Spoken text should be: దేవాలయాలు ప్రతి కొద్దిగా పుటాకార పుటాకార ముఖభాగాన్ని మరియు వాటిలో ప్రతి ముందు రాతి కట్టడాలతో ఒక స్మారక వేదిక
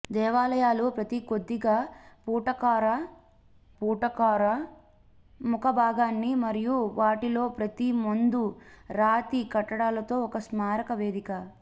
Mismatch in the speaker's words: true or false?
false